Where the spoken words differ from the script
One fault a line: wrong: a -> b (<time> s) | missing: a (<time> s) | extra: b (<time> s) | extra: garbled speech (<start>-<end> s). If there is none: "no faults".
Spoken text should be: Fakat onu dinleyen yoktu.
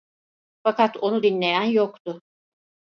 no faults